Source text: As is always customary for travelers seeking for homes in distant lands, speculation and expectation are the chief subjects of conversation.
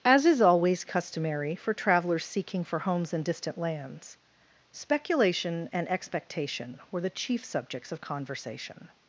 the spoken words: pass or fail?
fail